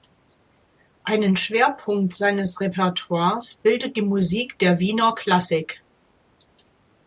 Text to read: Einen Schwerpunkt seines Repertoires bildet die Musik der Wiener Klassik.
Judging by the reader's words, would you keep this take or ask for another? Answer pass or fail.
pass